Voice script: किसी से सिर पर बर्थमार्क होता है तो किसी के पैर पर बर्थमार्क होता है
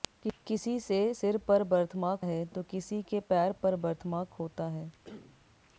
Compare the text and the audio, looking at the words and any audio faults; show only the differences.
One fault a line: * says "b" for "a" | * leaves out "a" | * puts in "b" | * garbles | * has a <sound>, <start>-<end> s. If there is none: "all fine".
* leaves out "होता"
* has a cough, 5.0-5.5 s